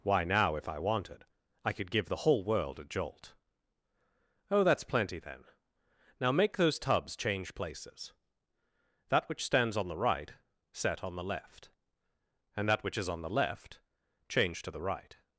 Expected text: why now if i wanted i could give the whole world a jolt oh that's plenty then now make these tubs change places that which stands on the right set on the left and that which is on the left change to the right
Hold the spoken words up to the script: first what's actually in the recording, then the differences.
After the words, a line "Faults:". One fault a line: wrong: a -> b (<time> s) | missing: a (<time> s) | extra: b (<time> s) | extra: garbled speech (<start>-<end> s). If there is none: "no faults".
why now if i wanted i could give the whole world a jolt oh that's plenty then now make those tubs change places that which stands on the right set on the left and that which is on the left change to the right
Faults:
wrong: these -> those (6.6 s)